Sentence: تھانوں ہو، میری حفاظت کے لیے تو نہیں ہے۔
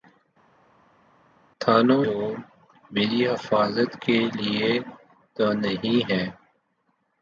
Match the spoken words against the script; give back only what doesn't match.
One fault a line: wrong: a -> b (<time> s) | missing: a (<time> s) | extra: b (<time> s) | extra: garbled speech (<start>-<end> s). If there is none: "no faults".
no faults